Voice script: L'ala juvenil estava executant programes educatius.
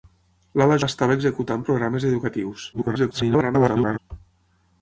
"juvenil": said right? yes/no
no